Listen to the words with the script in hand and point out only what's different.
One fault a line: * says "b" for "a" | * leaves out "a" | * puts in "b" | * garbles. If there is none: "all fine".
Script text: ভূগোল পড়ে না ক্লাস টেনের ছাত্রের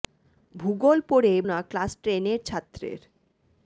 all fine